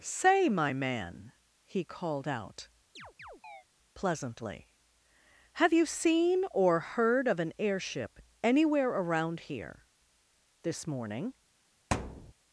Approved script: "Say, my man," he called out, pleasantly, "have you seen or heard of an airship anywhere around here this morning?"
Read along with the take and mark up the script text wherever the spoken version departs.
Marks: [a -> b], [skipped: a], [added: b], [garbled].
"Say, my man," he called out, pleasantly, "have you seen or heard of an airship anywhere around here this morning?"